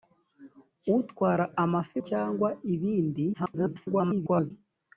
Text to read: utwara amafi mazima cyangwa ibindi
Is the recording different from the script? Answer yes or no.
yes